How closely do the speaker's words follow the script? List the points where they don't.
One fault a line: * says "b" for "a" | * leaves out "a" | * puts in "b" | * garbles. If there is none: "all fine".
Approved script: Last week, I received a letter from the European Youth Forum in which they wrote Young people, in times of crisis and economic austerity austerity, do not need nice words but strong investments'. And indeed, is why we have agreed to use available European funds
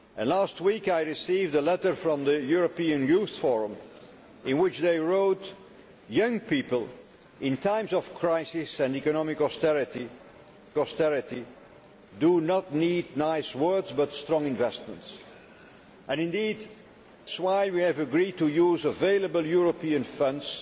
all fine